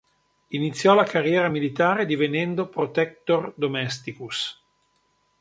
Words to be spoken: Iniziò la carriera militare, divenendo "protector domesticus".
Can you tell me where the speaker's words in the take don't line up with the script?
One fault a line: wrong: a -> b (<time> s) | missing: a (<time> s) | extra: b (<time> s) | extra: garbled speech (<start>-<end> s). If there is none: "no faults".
no faults